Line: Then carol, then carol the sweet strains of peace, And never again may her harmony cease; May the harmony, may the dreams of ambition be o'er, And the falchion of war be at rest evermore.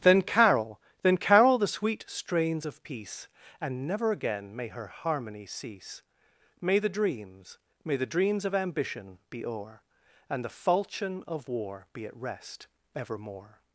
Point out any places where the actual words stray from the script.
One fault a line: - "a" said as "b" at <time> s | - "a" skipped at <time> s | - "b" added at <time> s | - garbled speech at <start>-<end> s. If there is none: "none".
- "harmony" said as "dreams" at 6.9 s